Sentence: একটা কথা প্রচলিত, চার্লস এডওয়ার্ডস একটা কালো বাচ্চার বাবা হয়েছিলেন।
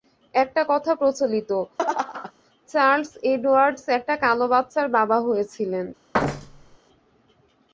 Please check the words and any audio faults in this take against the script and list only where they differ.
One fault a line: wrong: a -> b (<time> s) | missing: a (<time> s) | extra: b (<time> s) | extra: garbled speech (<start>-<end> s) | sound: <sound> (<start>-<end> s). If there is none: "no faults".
sound: laugh (1.8-2.3 s)
sound: thud (6.1-6.8 s)